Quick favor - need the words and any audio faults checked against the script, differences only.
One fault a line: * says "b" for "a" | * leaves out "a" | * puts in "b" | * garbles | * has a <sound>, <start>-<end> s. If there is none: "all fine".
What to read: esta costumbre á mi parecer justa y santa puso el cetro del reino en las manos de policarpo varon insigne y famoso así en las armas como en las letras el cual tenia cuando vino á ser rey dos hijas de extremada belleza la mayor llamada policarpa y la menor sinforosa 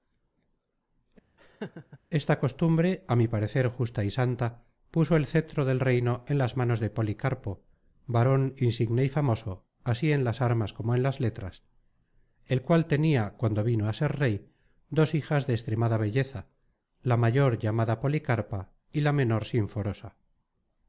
* has a laugh, 1.4-2.0 s